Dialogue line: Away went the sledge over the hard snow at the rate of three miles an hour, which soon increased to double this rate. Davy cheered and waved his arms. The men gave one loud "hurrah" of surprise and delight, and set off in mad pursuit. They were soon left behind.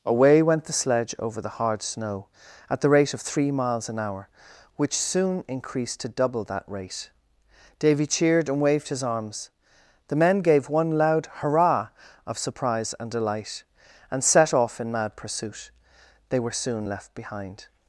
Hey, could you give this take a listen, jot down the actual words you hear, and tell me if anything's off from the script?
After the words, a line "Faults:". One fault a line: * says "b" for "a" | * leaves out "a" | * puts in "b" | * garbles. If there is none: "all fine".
Away went the sledge over the hard snow at the rate of three miles an hour, which soon increased to double that rate. Davy cheered and waved his arms. The men gave one loud "hurrah" of surprise and delight, and set off in mad pursuit. They were soon left behind.
Faults:
* says "that" for "this"